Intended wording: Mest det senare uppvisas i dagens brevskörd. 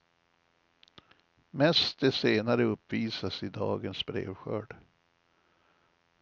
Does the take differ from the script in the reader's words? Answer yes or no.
no